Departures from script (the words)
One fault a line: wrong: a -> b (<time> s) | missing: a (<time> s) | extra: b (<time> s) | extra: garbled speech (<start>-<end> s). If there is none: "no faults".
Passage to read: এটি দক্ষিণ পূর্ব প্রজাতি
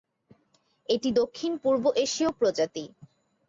extra: এশীয় (2.0 s)